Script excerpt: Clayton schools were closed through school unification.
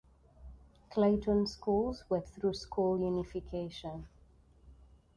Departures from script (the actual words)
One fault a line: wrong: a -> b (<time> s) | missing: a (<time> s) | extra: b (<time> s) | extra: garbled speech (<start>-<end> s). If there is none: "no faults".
missing: closed (2.2 s)